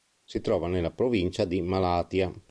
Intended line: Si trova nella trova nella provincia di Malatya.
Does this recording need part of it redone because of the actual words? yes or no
yes